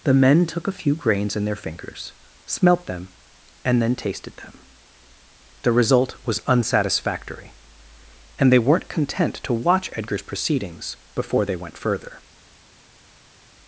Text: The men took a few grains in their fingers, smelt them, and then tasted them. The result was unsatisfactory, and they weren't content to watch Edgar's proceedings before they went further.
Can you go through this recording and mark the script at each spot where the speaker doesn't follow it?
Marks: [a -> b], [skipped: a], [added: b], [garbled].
The men took a few grains in their fingers, smelt them, and then tasted them. The result was unsatisfactory, and they weren't content to watch Edgar's proceedings before they went further.